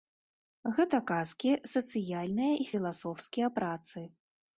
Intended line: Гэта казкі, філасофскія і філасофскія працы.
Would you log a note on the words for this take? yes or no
yes